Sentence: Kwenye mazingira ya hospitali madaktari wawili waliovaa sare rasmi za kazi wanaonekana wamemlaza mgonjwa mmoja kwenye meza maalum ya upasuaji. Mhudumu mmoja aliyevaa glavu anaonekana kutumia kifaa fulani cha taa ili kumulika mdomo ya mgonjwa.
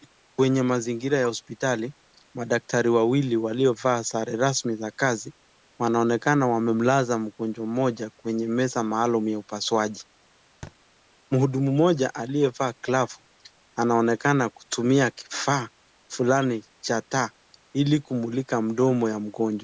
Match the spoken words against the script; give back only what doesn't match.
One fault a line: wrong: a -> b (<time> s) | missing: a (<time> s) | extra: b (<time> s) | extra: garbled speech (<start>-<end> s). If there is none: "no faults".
no faults